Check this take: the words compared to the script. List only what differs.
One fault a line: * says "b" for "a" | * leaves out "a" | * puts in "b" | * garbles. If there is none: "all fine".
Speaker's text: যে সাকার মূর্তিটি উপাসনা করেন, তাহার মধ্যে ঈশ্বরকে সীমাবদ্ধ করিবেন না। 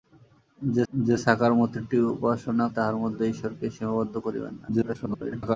* puts in "যে"
* leaves out "করেন"
* garbles